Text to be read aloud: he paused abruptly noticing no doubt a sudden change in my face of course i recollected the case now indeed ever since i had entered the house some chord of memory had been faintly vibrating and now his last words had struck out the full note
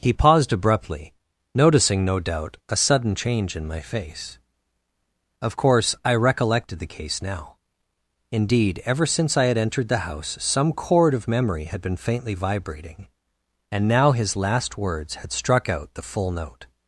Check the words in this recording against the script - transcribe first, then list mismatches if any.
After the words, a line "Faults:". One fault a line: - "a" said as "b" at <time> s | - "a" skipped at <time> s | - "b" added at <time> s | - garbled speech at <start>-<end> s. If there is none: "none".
he paused abruptly noticing no doubt a sudden change in my face of course i recollected the case now indeed ever since i had entered the house some chord of memory had been faintly vibrating and now his last words had struck out the full note
Faults:
none